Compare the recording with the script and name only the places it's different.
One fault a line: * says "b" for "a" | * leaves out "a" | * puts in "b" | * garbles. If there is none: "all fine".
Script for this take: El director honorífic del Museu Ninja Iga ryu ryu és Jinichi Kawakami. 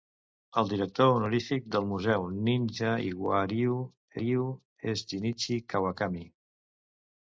all fine